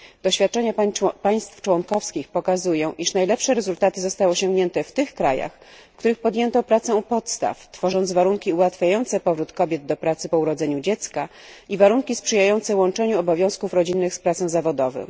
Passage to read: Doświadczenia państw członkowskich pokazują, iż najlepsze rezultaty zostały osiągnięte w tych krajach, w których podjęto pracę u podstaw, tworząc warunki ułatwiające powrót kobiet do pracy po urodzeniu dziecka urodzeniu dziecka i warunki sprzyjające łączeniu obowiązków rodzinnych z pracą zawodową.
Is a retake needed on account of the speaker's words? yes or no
yes